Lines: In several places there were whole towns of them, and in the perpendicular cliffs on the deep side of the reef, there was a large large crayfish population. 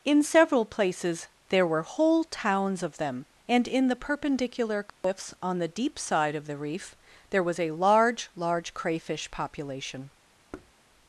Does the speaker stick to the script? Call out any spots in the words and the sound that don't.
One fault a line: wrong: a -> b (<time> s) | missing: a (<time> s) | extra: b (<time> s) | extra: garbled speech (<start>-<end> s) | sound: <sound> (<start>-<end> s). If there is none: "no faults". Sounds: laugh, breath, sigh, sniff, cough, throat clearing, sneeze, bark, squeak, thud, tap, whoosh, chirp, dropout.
sound: dropout (4.9-5.0 s)
sound: thud (10.5-10.7 s)